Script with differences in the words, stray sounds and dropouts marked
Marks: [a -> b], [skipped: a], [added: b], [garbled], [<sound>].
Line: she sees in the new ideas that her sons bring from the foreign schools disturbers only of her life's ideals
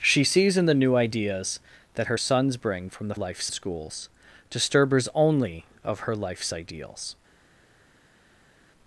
she sees in the new ideas that her sons bring from the [foreign -> life's] schools disturbers only of her life's ideals